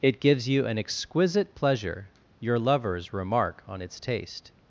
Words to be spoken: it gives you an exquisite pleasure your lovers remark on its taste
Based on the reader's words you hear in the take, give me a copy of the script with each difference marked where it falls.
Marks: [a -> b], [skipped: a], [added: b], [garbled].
it gives you an exquisite pleasure your lovers remark on its taste